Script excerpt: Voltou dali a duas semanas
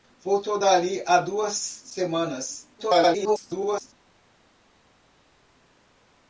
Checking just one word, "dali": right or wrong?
right